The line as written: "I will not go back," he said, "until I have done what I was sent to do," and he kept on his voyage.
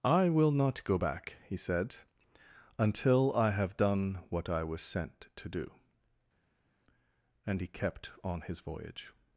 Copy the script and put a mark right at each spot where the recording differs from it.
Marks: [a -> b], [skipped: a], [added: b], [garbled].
"I will not go back," he said, "until I have done what I was sent to do," and he kept on his voyage.